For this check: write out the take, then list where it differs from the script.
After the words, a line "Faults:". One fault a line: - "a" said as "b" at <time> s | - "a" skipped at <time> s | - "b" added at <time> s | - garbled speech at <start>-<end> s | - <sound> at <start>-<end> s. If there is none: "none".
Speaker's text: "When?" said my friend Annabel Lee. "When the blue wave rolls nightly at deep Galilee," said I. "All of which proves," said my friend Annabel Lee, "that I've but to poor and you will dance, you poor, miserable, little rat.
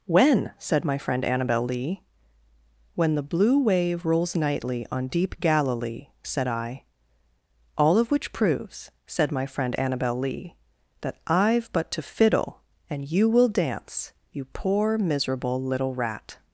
"When?" said my friend Annabel Lee. "When the blue wave rolls nightly on deep Galilee," said I. "All of which proves," said my friend Annabel Lee, "that I've but to fiddle and you will dance, you poor, miserable, little rat.
Faults:
- "at" said as "on" at 4.9 s
- "poor" said as "fiddle" at 12.0 s